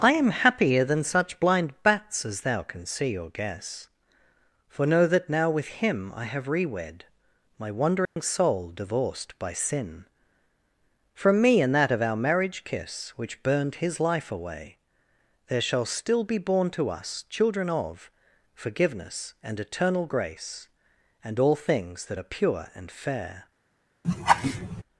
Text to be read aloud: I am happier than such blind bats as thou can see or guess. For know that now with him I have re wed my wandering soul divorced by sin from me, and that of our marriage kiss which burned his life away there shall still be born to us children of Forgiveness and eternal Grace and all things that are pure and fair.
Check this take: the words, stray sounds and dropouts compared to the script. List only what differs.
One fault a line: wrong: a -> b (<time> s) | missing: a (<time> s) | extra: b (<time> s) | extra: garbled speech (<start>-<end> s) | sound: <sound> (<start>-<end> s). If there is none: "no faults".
sound: dropout (8.0-8.2 s)
sound: laugh (24.0-24.8 s)